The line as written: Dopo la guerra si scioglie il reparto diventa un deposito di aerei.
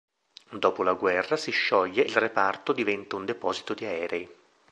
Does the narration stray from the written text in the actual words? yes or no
no